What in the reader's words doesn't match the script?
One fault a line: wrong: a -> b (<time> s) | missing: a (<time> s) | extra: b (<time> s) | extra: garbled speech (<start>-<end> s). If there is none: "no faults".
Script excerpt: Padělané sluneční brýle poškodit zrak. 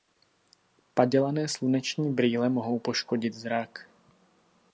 extra: mohou (2.5 s)